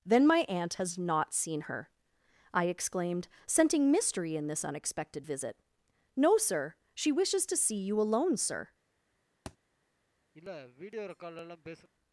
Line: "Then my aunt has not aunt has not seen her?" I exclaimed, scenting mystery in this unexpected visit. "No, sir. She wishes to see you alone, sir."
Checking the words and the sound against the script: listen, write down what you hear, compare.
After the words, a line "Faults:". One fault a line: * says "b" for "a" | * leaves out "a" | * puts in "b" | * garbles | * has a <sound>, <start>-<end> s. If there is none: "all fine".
"Then my aunt has not seen her?" I exclaimed, scenting mystery in this unexpected visit. "No, sir. She wishes to see you alone, sir."
Faults:
* leaves out "aunt has not"
* has a thud, 9.5-9.6 s
* has a sniff, 10.3-11.9 s